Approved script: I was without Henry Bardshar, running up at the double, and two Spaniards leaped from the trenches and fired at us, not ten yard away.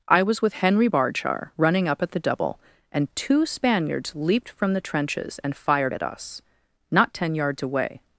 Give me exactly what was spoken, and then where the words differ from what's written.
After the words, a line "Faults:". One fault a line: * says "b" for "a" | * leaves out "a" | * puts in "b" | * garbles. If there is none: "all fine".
I was with Henry Bardshar, running up at the double, and two Spaniards leaped from the trenches and fired at us, not ten yards away.
Faults:
* says "with" for "without"
* says "yards" for "yard"